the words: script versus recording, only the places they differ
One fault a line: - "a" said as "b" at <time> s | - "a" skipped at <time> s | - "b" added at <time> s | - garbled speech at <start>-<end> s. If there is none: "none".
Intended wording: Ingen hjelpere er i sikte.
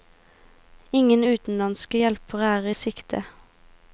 - "utenlandske" added at 1.2 s